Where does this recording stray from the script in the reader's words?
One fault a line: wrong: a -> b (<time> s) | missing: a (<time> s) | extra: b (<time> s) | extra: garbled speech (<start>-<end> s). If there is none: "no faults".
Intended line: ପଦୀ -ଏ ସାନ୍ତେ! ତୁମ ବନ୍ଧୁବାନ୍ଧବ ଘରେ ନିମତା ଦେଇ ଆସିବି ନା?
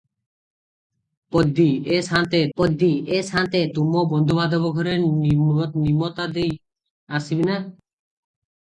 extra: ପଦୀ ଏ ସାନ୍ତେ (2.6 s)